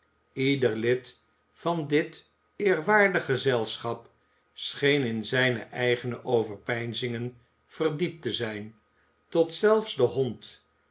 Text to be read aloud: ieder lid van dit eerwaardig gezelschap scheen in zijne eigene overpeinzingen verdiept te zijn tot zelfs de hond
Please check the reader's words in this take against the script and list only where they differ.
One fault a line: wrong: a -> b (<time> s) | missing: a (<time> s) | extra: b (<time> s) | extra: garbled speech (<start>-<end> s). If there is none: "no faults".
no faults